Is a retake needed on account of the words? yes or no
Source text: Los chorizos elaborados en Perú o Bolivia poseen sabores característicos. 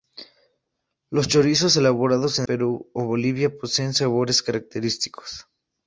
no